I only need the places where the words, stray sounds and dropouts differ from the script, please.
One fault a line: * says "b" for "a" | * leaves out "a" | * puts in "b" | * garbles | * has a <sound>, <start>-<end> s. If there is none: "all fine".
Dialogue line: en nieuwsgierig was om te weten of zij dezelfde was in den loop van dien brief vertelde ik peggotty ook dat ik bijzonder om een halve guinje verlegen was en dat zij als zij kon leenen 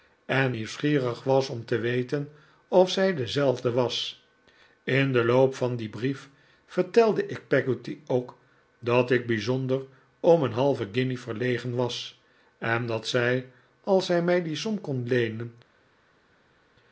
* puts in "mij die som"